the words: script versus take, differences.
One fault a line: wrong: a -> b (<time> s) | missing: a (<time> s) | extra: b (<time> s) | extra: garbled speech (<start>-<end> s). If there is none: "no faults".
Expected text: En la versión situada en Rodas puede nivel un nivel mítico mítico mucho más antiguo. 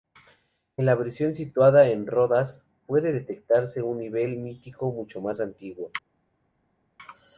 wrong: nivel -> detectarse (3.1 s)
missing: mítico (4.9 s)